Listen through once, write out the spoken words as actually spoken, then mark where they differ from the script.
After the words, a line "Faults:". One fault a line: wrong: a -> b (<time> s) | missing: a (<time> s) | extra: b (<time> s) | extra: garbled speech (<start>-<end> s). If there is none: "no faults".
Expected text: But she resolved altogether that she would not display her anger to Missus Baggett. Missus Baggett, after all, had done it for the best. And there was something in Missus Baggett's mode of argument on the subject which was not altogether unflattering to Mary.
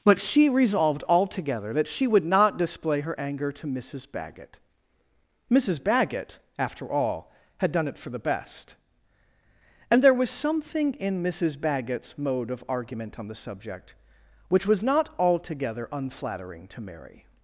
But she resolved altogether that she would not display her anger to Missus Baggett. Missus Baggett, after all, had done it for the best. And there was something in Missus Baggett's mode of argument on the subject which was not altogether unflattering to Mary.
Faults:
no faults